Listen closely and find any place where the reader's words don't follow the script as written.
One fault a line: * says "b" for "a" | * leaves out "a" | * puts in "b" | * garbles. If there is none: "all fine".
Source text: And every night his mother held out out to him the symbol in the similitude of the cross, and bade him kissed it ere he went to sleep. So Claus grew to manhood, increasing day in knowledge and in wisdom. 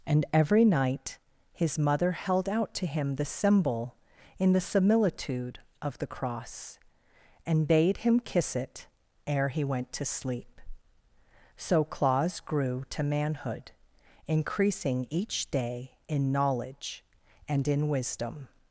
* leaves out "out"
* says "kiss" for "kissed"
* puts in "each"